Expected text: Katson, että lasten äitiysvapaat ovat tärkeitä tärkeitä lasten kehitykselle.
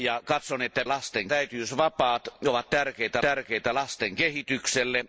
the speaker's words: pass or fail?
pass